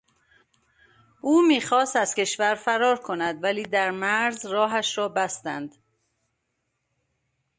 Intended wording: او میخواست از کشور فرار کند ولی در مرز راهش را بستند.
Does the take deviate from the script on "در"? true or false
false